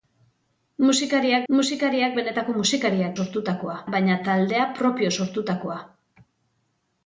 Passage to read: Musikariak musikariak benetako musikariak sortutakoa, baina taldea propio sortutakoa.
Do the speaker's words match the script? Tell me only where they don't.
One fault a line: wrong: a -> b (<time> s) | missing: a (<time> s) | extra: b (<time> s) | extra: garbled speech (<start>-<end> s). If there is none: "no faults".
no faults